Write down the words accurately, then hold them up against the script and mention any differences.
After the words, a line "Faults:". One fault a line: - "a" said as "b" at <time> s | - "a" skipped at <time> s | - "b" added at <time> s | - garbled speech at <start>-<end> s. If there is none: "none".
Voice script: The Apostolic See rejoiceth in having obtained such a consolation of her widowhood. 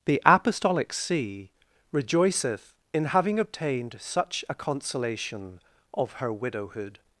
The Apostolic See rejoiceth in having obtained such a consolation of her widowhood.
Faults:
none